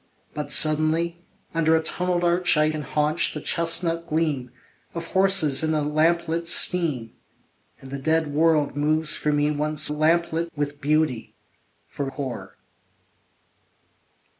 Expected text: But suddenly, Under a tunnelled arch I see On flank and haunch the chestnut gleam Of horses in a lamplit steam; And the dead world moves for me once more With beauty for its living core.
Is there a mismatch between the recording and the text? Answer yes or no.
yes